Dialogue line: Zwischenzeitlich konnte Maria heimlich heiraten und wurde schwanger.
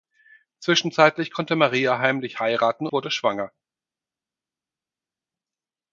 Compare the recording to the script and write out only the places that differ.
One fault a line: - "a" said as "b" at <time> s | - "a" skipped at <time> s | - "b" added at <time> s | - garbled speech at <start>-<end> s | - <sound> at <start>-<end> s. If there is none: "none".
- "und" skipped at 2.9 s